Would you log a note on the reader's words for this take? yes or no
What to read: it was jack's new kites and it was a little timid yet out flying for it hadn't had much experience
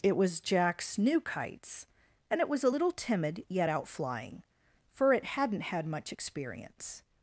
no